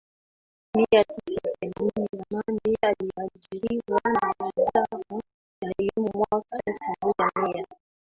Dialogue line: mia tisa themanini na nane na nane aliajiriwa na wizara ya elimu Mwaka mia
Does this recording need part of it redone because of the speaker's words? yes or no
yes